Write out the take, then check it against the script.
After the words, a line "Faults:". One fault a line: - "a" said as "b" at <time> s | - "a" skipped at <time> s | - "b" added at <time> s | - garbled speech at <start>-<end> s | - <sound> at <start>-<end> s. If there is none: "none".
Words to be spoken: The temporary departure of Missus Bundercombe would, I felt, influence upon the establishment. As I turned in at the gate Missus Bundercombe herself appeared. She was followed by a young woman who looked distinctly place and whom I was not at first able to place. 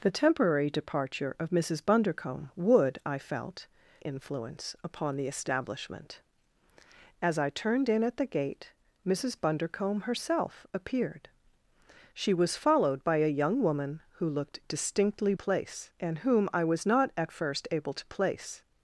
The temporary departure of Missus Bundercombe would, I felt, influence upon the establishment. As I turned in at the gate Missus Bundercombe herself appeared. She was followed by a young woman who looked distinctly place and whom I was not at first able to place.
Faults:
none